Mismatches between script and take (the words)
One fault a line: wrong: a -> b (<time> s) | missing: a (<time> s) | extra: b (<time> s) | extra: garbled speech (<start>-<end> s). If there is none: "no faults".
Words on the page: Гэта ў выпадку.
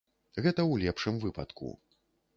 extra: лепшым (0.8 s)